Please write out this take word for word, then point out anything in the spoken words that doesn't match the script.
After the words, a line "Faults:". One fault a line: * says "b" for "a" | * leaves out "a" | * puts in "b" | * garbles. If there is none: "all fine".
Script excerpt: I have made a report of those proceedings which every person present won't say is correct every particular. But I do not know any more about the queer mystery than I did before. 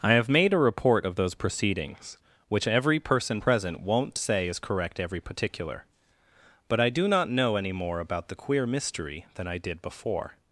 I have made a report of those proceedings which every person present won't say is correct every particular. But I do not know any more about the queer mystery than I did before.
Faults:
all fine